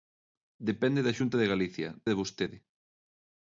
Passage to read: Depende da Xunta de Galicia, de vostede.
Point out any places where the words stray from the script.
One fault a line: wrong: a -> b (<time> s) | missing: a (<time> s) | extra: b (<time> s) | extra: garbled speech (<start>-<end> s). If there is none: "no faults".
no faults